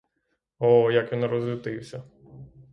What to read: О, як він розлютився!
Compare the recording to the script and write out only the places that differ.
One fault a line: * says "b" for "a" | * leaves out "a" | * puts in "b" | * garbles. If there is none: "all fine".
all fine